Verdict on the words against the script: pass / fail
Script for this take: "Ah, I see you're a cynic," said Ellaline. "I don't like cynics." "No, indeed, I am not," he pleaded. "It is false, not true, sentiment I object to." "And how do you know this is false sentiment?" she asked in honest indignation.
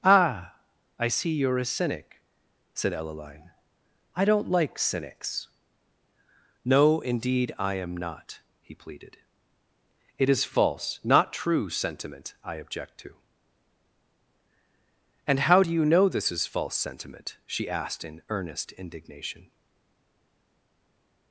fail